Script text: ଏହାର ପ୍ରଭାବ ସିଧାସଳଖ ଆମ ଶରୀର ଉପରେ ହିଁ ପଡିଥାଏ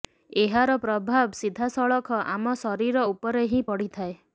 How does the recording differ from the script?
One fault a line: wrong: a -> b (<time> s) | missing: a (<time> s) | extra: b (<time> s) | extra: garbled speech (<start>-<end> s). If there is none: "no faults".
no faults